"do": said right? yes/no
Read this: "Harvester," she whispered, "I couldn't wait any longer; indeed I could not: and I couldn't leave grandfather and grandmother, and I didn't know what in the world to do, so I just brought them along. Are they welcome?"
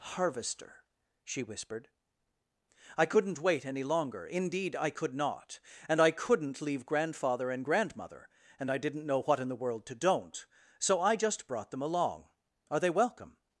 no